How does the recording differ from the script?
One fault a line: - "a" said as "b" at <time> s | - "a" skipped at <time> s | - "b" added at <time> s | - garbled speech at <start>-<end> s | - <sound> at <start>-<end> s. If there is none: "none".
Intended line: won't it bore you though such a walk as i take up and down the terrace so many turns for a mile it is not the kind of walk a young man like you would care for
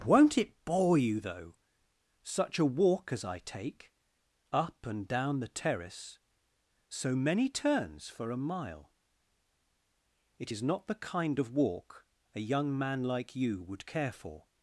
none